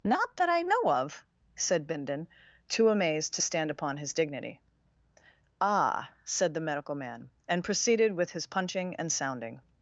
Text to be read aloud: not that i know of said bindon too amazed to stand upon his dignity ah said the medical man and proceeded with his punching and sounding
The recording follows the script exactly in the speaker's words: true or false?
true